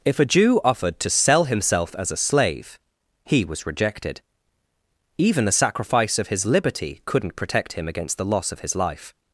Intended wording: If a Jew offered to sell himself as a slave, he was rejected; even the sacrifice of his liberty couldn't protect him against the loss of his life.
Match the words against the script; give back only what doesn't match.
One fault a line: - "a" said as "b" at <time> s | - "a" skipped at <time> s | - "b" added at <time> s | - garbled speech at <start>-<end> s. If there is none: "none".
none